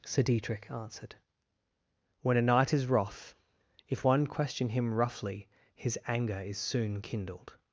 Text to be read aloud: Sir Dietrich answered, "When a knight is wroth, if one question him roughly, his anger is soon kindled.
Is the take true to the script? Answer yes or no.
yes